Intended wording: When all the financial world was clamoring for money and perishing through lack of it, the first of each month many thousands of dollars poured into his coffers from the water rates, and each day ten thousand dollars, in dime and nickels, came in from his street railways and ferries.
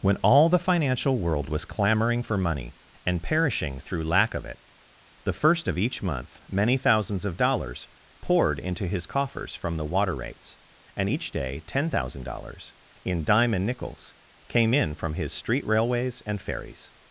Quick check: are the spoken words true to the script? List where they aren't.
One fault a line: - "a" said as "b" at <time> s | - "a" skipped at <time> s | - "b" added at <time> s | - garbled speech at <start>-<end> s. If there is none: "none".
none